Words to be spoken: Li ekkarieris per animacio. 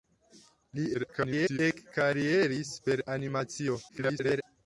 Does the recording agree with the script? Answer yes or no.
no